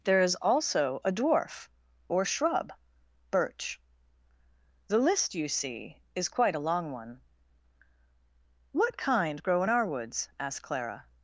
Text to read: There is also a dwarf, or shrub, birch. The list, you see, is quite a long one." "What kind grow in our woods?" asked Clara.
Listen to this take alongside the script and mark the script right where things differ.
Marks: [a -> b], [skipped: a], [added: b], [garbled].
There is also a dwarf, or shrub, birch. The list, you see, is quite a long one." "What kind grow in our woods?" asked Clara.